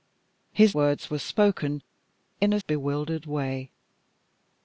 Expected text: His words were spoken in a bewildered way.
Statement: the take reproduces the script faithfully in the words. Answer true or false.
true